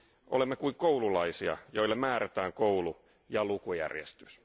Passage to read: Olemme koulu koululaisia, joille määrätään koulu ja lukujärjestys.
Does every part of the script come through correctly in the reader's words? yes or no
no